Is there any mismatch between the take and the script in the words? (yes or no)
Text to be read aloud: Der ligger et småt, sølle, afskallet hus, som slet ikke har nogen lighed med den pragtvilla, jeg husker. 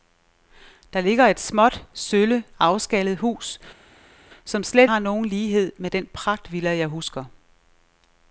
yes